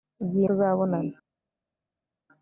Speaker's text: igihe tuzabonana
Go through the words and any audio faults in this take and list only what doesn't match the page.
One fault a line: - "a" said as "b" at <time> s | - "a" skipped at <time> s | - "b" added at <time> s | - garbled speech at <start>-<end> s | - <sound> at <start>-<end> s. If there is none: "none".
none